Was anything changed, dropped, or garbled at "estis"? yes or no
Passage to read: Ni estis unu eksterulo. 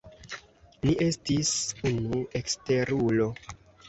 no